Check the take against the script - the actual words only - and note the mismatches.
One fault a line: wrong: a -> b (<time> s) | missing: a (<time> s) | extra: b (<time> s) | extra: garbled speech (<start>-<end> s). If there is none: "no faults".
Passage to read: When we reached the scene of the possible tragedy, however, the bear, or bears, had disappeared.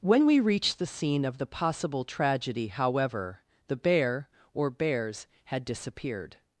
no faults